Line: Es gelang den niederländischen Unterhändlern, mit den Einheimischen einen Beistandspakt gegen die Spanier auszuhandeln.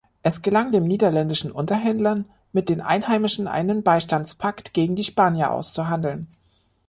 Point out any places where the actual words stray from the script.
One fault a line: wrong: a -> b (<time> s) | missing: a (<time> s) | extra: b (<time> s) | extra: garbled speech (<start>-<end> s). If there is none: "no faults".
no faults